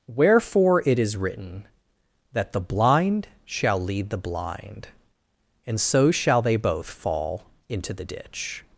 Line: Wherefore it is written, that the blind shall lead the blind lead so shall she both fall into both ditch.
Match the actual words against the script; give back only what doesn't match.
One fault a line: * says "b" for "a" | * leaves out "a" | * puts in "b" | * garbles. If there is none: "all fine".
* says "and" for "lead"
* says "they" for "she"
* says "the" for "both"